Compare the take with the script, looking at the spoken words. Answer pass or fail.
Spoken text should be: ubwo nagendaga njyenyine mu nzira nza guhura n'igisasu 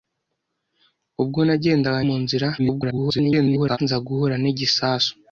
fail